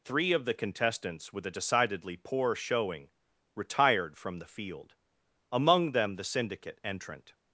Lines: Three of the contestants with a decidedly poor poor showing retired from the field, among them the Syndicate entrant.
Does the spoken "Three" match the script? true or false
true